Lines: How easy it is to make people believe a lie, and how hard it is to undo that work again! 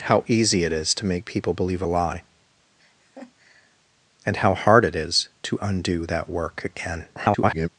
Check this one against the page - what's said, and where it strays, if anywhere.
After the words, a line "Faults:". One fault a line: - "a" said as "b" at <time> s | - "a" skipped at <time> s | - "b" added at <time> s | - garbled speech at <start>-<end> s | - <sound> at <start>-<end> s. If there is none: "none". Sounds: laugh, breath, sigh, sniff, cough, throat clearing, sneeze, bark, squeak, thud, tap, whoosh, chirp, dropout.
How easy it is to make people believe a lie, and how hard it is to undo that work again! [garbled]
Faults:
- laugh at 2.8-3.8 s
- garbled speech at 7.2-7.7 s